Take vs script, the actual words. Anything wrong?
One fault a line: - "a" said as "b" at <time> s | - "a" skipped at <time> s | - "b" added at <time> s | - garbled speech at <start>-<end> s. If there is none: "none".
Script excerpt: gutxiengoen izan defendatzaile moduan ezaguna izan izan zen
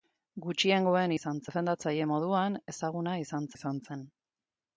none